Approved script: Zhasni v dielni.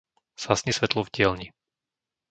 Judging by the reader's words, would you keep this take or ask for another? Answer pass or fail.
fail